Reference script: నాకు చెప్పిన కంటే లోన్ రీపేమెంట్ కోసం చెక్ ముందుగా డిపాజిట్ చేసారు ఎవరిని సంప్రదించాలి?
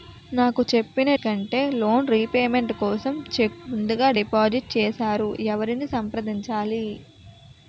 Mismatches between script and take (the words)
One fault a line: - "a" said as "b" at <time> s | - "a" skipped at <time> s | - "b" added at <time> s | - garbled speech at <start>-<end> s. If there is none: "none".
none